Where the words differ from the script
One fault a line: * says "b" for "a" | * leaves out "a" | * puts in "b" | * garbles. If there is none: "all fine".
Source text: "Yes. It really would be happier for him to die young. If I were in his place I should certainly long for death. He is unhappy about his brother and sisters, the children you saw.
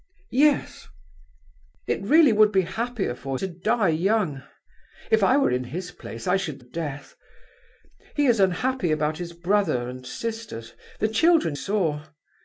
* leaves out "him"
* leaves out "certainly long for"
* leaves out "you"